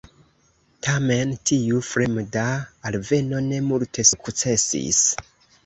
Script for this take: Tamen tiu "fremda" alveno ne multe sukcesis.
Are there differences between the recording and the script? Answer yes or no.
no